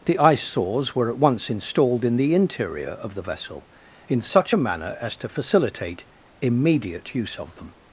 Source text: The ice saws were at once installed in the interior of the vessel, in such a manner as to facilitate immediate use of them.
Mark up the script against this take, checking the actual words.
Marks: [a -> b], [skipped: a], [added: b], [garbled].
The ice saws were at once installed in the interior of the vessel, in such a manner as to facilitate immediate use of them.